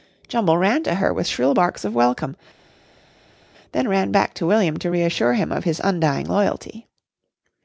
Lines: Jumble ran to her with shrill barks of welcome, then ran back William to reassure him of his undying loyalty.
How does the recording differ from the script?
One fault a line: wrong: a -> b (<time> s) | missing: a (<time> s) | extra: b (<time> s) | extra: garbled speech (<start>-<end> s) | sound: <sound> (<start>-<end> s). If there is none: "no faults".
extra: to (4.4 s)